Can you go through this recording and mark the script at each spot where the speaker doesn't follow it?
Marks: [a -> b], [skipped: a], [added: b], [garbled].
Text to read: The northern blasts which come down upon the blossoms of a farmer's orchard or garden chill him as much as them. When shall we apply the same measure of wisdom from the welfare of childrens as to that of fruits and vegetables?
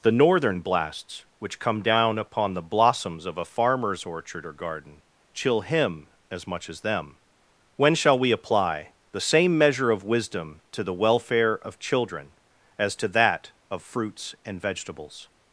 The northern blasts which come down upon the blossoms of a farmer's orchard or garden chill him as much as them. When shall we apply the same measure of wisdom [from -> to] the welfare of [childrens -> children] as to that of fruits and vegetables?